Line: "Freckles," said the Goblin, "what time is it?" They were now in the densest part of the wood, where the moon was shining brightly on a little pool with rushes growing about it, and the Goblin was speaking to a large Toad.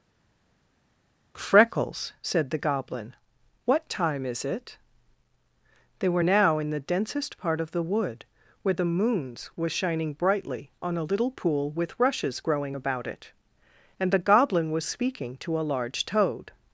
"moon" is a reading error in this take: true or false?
true